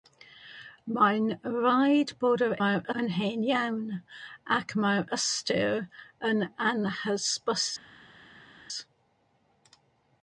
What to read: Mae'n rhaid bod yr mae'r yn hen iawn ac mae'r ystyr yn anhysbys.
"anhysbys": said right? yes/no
yes